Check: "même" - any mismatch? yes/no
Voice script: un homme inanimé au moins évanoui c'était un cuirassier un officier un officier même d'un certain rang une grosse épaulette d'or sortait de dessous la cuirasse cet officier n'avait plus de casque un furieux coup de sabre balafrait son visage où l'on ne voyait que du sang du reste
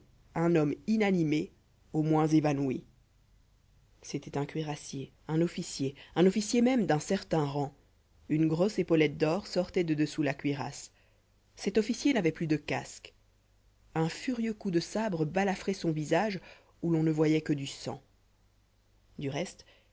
no